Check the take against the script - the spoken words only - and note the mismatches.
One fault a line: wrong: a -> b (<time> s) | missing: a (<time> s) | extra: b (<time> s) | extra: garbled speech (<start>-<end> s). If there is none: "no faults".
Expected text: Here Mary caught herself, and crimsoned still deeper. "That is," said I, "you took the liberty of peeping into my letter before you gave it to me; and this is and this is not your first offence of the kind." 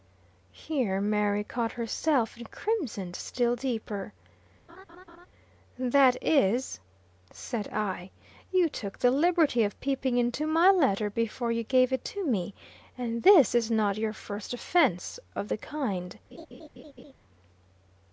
missing: and this is (13.7 s)